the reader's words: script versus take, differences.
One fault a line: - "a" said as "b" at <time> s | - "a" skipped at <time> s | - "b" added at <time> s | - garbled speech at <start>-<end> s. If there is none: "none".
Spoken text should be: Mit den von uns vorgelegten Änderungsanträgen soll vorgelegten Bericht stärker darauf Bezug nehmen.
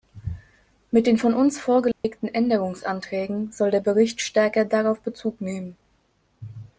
- "vorgelegten" said as "der" at 3.7 s